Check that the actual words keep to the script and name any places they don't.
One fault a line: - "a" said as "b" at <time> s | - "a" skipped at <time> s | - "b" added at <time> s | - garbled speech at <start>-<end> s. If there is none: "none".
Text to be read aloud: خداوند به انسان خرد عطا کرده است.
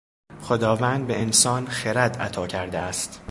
none